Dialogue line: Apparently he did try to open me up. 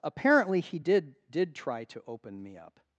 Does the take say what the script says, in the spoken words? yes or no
no